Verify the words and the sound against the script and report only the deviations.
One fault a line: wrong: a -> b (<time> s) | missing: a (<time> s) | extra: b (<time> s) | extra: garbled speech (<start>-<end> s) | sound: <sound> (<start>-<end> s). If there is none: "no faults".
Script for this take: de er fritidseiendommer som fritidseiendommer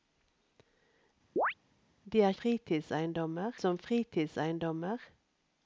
sound: chirp (1.4-1.5 s)